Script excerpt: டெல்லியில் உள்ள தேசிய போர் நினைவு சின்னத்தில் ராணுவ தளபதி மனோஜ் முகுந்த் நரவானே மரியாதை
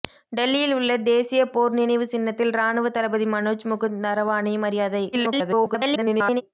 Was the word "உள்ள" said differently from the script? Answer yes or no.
no